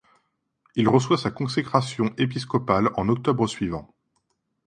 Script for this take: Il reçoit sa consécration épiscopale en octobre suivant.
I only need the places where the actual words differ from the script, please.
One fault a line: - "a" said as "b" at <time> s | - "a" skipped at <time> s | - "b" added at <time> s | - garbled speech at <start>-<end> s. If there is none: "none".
none